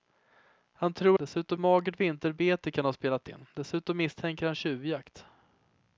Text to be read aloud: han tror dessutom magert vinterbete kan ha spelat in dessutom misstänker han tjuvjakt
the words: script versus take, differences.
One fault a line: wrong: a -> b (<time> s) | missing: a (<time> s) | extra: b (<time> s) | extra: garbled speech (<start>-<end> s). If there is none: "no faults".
no faults